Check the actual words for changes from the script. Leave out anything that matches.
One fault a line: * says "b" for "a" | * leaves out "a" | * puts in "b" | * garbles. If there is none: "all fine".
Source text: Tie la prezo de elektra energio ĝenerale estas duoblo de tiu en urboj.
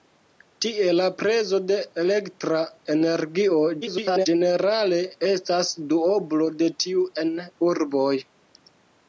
* garbles